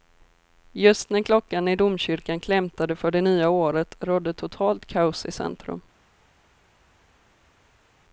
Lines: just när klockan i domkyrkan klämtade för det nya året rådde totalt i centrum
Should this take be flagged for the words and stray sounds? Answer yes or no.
yes